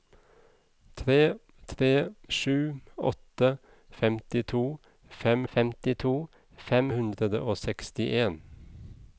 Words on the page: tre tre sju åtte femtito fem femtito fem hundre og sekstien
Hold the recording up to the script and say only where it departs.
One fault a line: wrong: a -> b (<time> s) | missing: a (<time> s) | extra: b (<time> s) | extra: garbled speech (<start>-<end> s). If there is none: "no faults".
no faults